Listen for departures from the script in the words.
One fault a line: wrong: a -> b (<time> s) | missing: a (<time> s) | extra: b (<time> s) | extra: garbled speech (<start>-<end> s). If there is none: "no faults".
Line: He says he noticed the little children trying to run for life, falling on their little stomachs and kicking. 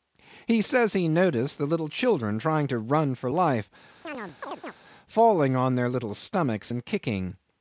no faults